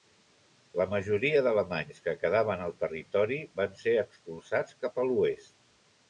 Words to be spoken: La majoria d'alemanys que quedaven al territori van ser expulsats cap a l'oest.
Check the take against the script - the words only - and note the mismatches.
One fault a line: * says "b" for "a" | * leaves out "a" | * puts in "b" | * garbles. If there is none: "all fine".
all fine